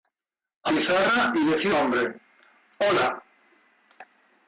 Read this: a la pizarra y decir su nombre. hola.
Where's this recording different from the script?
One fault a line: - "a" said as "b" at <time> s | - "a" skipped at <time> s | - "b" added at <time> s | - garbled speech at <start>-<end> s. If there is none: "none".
- "la" skipped at 0.7 s
- "su" skipped at 1.7 s